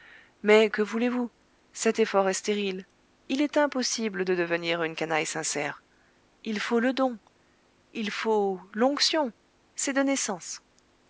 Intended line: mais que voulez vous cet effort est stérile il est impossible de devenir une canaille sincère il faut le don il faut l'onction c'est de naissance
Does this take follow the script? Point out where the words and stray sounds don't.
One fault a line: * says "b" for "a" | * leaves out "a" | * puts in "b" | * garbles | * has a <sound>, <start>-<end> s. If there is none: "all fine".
all fine